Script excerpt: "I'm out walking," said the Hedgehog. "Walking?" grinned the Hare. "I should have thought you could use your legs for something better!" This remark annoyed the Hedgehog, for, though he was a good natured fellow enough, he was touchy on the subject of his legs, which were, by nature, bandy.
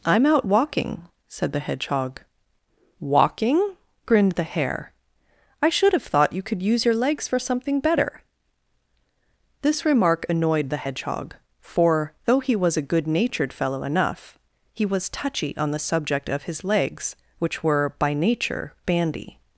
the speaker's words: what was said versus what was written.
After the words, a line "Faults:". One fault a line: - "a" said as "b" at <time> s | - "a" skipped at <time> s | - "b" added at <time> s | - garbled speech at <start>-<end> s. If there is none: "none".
"I'm out walking," said the Hedgehog. "Walking?" grinned the Hare. "I should have thought you could use your legs for something better!" This remark annoyed the Hedgehog, for, though he was a good natured fellow enough, he was touchy on the subject of his legs, which were, by nature, bandy.
Faults:
none